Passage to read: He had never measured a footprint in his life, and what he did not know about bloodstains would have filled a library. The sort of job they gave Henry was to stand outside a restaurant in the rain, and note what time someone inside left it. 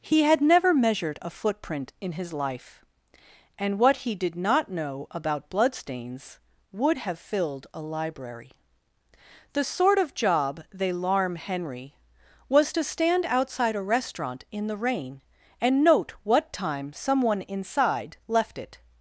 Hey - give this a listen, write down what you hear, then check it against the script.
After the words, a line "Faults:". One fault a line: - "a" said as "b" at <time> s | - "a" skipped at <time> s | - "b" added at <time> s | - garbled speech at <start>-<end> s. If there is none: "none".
He had never measured a footprint in his life, and what he did not know about bloodstains would have filled a library. The sort of job they larm Henry was to stand outside a restaurant in the rain, and note what time someone inside left it.
Faults:
- "gave" said as "larm" at 10.9 s